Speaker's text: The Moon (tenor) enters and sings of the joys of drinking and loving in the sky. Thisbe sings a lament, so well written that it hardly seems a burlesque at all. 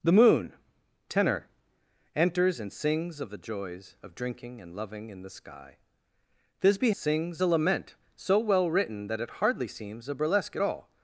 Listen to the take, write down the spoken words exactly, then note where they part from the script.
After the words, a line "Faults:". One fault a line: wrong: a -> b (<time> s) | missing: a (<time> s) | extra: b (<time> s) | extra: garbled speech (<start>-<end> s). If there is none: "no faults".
The Moon (tenor) enters and sings of the joys of drinking and loving in the sky. Thisbe sings a lament, so well written that it hardly seems a burlesque at all.
Faults:
no faults